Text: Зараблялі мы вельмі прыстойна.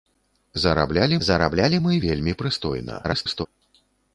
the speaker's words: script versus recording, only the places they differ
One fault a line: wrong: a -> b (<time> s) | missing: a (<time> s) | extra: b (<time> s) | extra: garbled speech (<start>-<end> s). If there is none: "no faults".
extra: зараблялі (1.3 s)
extra: garbled speech (3.0-3.5 s)